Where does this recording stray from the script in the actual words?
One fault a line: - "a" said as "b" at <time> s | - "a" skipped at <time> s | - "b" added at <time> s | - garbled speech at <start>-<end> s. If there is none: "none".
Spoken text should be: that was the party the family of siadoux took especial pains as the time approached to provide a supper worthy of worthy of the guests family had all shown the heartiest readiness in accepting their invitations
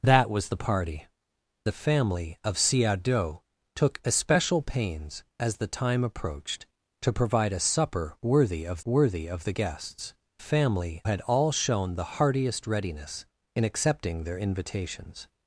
none